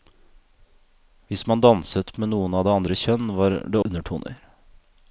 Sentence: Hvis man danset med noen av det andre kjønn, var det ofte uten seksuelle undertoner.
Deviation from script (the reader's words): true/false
true